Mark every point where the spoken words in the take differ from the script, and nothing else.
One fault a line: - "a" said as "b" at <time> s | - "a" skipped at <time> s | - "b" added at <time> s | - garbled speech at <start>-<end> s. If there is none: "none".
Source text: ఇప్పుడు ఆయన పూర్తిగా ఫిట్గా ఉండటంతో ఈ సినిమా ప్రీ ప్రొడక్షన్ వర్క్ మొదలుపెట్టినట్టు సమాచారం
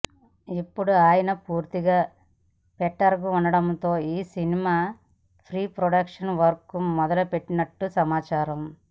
none